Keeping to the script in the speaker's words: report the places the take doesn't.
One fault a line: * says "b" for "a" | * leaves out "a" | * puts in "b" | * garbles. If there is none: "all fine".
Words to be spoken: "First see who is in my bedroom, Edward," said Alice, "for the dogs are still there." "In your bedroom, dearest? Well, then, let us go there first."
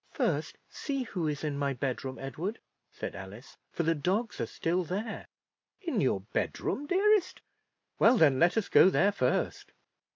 all fine